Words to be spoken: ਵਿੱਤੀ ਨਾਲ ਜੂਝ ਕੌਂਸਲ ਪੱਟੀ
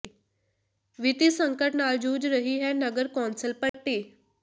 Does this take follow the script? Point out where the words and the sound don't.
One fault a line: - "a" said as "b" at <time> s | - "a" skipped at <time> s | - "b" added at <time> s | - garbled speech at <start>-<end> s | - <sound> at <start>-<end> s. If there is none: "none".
- "ਸੰਕਟ" added at 1.3 s
- "ਰਹੀ ਹੈ ਨਗਰ" added at 2.3 s
- dropout at 3.7-3.7 s